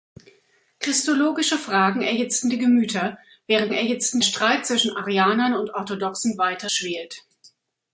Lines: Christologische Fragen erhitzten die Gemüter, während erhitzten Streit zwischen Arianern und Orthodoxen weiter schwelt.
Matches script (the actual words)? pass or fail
pass